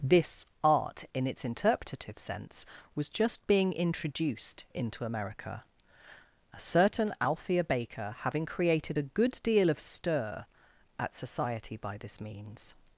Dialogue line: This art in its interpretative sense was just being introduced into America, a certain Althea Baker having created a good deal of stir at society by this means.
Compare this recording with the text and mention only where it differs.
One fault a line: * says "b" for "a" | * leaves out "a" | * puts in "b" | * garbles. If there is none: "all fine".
all fine